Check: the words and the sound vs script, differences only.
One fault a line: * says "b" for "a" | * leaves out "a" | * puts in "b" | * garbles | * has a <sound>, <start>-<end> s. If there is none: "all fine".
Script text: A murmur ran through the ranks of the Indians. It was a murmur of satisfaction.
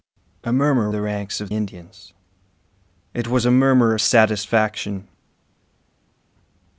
* leaves out "ran through"
* leaves out "the"